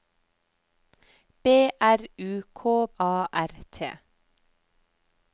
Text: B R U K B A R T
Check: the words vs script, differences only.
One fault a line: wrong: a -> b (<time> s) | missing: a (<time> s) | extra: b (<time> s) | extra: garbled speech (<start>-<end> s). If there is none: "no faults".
missing: B (2.9 s)